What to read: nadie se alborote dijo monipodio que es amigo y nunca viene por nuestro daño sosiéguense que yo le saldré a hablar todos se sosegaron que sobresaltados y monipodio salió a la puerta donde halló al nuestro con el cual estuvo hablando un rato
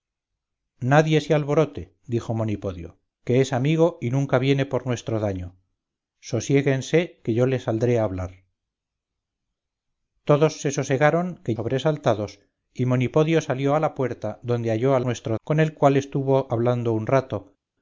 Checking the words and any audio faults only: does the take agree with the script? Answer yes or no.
yes